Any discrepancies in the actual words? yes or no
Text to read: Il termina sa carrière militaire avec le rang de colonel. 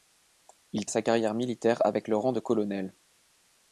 yes